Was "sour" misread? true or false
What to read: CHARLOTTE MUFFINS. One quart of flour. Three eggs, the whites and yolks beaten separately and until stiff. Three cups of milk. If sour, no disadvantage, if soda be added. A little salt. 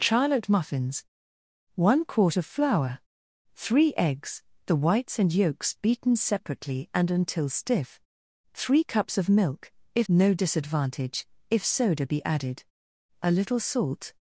true